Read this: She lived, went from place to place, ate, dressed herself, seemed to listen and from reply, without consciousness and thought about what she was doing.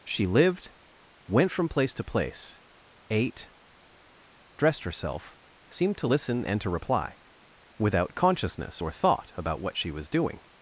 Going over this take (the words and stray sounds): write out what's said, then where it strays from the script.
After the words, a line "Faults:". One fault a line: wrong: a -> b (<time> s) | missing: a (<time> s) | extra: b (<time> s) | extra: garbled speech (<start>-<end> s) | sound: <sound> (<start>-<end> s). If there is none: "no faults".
She lived, went from place to place, ate, dressed herself, seemed to listen and to reply, without consciousness or thought about what she was doing.
Faults:
wrong: from -> to (6.6 s)
wrong: and -> or (8.8 s)